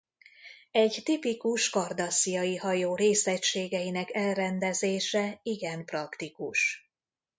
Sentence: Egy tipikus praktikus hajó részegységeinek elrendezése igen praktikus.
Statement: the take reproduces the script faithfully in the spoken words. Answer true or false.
false